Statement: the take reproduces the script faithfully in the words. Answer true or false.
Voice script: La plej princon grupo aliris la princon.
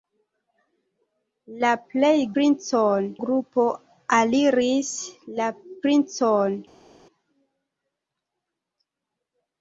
true